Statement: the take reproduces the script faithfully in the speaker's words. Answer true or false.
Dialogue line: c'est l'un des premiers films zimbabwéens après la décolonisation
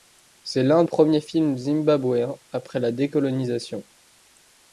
false